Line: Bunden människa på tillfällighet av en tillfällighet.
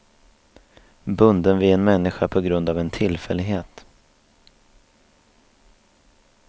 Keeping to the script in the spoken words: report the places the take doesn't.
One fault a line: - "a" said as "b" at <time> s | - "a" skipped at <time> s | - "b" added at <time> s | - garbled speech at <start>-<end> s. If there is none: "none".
- "vid en" added at 1.6 s
- "tillfällighet" said as "grund" at 2.4 s